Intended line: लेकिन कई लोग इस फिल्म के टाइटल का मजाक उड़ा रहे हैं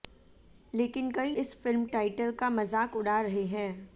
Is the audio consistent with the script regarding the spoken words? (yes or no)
no